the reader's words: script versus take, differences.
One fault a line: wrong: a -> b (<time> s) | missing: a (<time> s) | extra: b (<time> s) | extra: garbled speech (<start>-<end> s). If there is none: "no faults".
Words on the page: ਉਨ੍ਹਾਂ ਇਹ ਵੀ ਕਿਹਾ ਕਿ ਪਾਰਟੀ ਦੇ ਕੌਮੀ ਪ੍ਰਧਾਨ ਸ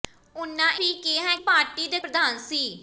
missing: ਇਹ (0.7 s)
missing: ਕਿ (1.3 s)
missing: ਕੌਮੀ (2.0 s)